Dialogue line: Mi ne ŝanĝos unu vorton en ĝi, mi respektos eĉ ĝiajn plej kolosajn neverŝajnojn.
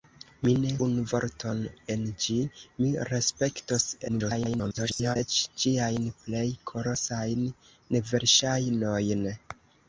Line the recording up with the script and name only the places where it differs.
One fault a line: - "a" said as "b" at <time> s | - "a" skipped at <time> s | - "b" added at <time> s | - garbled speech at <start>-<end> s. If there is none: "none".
- "ŝanĝos" skipped at 0.7 s
- garbled speech at 4.1-5.2 s